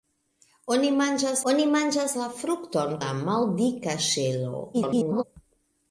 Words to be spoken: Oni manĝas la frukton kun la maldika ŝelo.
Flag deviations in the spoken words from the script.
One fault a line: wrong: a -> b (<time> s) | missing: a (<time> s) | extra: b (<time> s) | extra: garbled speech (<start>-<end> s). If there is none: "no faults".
extra: oni manĝas (1.5 s)
missing: kun (3.0 s)
extra: garbled speech (4.7-5.2 s)